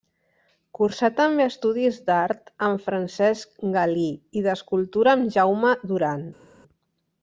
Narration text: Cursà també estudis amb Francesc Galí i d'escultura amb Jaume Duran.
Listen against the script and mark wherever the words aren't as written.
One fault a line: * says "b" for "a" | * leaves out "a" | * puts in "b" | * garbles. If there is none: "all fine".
* puts in "d'art"